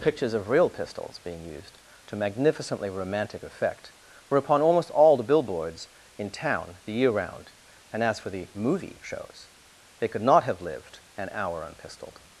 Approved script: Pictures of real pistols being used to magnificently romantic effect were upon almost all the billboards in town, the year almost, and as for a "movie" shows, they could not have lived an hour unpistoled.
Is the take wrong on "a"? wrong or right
wrong